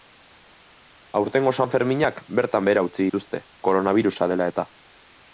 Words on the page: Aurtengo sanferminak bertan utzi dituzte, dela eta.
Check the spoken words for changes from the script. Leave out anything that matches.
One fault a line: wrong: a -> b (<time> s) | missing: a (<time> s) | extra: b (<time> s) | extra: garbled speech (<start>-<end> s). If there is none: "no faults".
extra: behera (2.7 s)
extra: koronabirusa (3.7 s)